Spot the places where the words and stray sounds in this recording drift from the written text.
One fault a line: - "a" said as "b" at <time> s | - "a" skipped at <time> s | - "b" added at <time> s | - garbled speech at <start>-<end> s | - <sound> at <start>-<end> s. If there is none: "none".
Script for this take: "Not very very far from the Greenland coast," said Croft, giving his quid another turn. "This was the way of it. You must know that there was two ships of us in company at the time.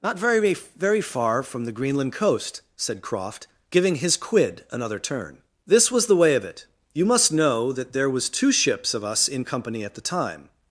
none